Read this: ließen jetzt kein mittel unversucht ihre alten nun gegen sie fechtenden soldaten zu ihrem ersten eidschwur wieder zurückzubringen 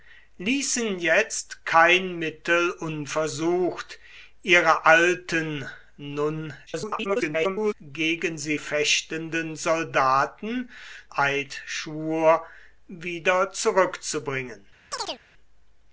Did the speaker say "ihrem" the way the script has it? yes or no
no